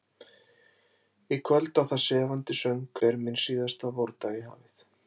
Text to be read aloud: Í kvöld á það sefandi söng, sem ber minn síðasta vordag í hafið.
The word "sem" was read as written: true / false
false